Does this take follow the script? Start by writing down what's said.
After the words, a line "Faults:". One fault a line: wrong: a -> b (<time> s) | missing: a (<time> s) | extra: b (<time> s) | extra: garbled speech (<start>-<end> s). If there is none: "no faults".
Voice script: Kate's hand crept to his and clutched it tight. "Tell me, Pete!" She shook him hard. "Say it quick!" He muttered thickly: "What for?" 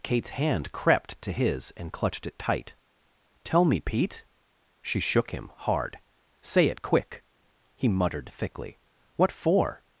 Kate's hand crept to his and clutched it tight. "Tell me, Pete!" She shook him hard. "Say it quick!" He muttered thickly: "What for?"
Faults:
no faults